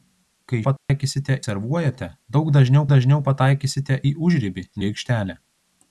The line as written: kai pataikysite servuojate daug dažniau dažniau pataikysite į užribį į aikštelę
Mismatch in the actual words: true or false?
false